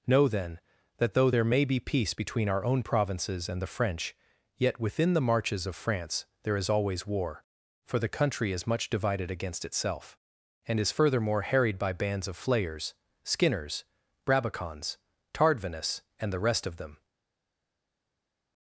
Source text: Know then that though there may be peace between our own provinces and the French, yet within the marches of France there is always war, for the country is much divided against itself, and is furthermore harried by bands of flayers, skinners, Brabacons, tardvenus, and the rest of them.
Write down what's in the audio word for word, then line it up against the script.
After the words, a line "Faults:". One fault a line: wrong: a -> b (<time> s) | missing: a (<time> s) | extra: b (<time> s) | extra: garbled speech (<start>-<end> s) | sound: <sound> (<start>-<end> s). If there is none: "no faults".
Know then that though there may be peace between our own provinces and the French, yet within the marches of France there is always war, for the country is much divided against itself, and is furthermore harried by bands of flayers, skinners, Brabacons, tardvenus, and the rest of them.
Faults:
no faults